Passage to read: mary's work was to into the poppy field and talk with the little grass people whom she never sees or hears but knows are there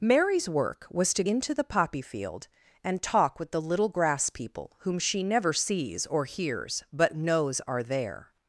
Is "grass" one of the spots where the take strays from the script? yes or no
no